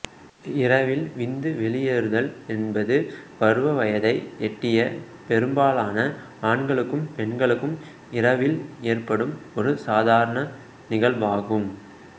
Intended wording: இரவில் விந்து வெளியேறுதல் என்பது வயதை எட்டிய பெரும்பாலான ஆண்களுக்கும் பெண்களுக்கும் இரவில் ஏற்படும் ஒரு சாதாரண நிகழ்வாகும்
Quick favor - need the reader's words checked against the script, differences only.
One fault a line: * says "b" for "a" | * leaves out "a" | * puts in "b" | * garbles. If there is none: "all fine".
* puts in "பருவ"